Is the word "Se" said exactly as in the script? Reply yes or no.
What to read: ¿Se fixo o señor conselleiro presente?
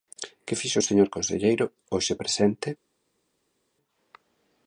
no